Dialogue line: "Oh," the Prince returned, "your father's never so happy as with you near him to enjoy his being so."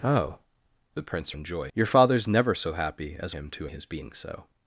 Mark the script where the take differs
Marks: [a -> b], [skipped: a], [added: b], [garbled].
"Oh," the Prince [returned, -> enjoy] "your father's never so happy as [skipped: with you near] him to [skipped: enjoy] his being so."